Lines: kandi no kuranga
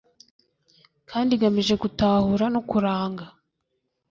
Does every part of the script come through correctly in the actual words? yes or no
no